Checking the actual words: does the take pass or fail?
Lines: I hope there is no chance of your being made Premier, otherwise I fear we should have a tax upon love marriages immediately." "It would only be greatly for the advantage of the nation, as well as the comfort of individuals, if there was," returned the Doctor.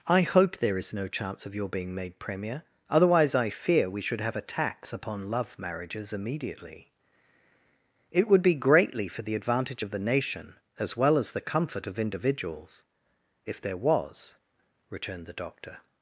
fail